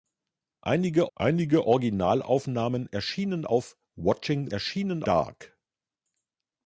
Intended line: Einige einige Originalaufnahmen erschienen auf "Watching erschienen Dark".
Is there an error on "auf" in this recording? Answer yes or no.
no